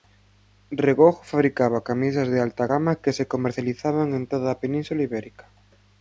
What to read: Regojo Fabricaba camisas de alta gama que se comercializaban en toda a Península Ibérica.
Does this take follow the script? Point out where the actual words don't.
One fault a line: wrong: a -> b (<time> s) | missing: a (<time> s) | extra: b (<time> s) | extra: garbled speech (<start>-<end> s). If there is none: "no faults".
no faults